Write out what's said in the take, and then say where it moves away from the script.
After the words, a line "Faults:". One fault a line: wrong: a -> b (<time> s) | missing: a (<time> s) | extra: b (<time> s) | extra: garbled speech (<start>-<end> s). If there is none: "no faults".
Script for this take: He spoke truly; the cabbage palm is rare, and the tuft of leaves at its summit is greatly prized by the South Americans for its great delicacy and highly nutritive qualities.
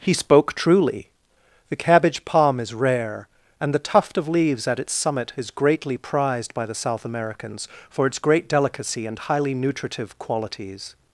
He spoke truly; the cabbage palm is rare, and the tuft of leaves at its summit is greatly prized by the South Americans for its great delicacy and highly nutritive qualities.
Faults:
no faults